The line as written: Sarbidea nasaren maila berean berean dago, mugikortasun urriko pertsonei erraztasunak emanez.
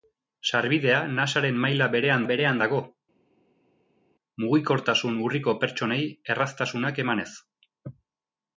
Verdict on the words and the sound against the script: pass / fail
pass